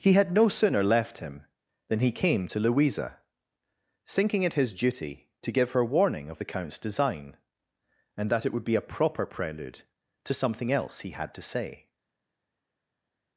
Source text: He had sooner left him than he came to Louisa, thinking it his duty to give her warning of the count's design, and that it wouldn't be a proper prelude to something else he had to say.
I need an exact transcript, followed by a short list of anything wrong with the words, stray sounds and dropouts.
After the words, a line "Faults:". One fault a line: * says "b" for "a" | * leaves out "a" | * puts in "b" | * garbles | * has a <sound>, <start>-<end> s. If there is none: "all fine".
He had no sooner left him than he came to Louisa, thinking it his duty to give her warning of the count's design, and that it would be a proper prelude to something else he had to say.
Faults:
* puts in "no"
* says "would" for "wouldn't"